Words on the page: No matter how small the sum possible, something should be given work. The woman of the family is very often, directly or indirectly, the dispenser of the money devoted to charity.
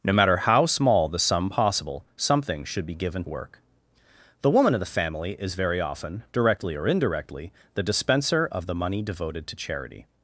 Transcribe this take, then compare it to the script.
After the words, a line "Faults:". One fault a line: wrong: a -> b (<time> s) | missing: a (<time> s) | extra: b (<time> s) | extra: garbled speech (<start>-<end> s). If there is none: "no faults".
No matter how small the sum possible, something should be given work. The woman of the family is very often, directly or indirectly, the dispenser of the money devoted to charity.
Faults:
no faults